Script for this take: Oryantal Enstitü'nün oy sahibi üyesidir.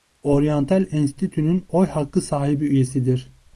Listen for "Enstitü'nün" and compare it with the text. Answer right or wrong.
right